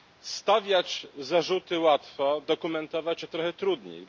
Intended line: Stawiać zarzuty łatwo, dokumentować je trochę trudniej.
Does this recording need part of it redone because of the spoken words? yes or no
no